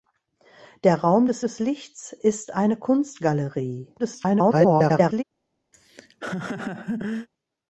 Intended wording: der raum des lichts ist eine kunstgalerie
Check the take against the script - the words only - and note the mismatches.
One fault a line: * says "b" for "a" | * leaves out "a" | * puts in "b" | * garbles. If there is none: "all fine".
* puts in "des"
* garbles